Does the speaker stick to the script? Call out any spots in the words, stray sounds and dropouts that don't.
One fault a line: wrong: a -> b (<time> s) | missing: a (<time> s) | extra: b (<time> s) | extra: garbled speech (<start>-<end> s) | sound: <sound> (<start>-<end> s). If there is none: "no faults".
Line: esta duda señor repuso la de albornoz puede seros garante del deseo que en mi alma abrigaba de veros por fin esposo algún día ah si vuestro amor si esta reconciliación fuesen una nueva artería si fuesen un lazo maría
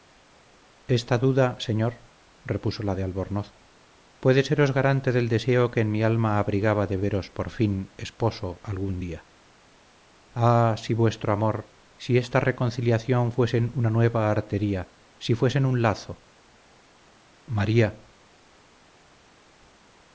no faults